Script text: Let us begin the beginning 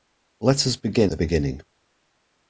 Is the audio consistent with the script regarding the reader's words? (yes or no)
yes